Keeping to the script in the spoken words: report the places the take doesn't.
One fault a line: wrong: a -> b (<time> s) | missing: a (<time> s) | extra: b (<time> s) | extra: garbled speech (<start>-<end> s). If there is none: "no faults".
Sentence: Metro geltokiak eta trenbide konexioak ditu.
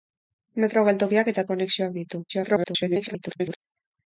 missing: trenbide (1.4 s)
extra: garbled speech (2.3-3.6 s)